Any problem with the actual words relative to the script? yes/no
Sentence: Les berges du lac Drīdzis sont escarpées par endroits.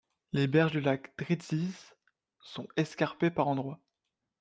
no